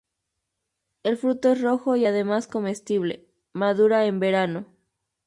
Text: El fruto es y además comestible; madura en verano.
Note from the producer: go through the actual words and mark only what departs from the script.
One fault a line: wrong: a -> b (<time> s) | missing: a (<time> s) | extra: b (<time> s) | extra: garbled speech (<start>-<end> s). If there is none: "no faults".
extra: rojo (1.6 s)